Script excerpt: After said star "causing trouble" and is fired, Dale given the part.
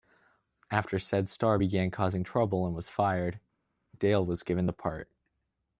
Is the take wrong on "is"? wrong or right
wrong